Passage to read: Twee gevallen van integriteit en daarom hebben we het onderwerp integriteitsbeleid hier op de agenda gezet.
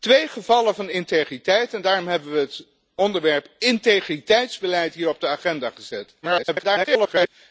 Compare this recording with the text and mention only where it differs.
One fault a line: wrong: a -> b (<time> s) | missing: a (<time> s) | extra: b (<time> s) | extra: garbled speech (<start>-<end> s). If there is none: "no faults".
extra: garbled speech (6.2-7.3 s)